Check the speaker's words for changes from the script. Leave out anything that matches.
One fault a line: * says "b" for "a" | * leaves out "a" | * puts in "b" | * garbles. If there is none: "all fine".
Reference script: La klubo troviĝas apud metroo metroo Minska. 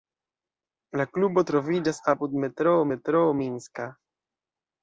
all fine